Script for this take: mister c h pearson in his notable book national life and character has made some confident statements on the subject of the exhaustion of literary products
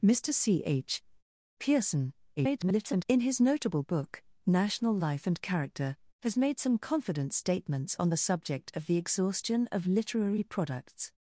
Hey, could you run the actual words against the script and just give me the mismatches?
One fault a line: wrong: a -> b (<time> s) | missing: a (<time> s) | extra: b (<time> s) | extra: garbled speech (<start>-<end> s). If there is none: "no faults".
extra: garbled speech (2.4-3.1 s)